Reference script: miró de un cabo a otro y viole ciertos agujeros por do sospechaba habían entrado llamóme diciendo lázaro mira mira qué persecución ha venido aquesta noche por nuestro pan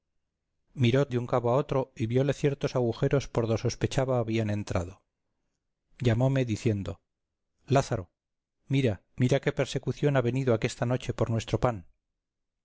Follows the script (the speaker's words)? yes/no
yes